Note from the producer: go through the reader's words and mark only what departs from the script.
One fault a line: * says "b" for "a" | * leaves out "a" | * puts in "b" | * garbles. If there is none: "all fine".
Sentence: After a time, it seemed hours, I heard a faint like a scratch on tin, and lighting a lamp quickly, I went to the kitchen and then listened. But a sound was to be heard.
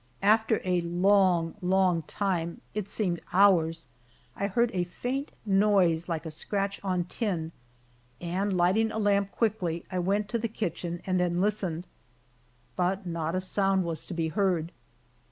* puts in "long long"
* puts in "noise"
* puts in "not"